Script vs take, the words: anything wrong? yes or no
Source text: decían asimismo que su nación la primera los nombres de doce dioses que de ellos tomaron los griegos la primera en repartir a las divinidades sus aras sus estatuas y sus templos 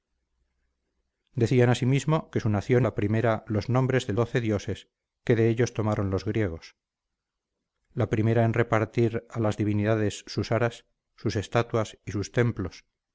no